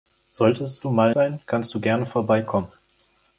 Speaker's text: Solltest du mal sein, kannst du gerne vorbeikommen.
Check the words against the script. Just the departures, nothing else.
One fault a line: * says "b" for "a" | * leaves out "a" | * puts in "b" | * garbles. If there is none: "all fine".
all fine